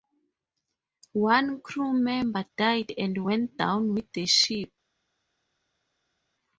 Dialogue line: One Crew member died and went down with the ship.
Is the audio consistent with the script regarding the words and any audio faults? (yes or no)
yes